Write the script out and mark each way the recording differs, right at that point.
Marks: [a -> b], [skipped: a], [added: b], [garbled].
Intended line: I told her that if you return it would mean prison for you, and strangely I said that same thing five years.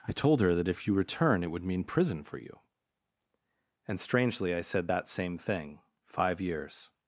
I told her that if you return it would mean prison for you, and strangely I said that same thing five years.